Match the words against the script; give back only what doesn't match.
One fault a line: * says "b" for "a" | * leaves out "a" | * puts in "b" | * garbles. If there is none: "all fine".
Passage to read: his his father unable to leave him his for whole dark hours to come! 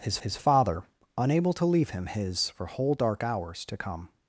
all fine